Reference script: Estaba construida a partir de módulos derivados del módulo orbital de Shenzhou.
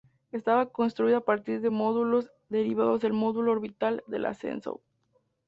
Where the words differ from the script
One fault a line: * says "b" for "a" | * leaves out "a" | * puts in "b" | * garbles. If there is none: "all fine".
* puts in "la"